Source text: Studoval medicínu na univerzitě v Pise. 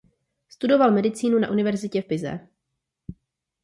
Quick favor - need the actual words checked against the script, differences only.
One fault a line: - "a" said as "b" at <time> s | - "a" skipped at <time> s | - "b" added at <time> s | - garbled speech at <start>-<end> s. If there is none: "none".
none